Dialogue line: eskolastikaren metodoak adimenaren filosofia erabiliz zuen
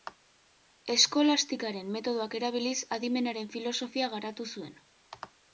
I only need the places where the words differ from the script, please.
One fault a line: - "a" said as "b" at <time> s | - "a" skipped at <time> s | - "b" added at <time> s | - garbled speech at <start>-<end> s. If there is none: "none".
- "erabiliz" added at 2.4 s
- "erabiliz" said as "garatu" at 4.2 s